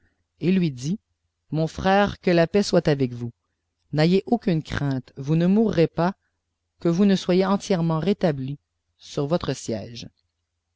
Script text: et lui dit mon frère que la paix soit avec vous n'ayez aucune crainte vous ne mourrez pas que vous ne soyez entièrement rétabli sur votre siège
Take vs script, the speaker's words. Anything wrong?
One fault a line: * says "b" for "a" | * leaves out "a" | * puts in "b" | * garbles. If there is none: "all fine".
all fine